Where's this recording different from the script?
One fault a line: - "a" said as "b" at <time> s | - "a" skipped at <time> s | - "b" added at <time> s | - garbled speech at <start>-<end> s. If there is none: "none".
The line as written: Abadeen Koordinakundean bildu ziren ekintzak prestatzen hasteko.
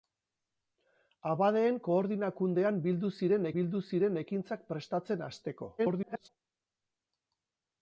- "bildu ziren" added at 3.6 s
- garbled speech at 5.8-6.3 s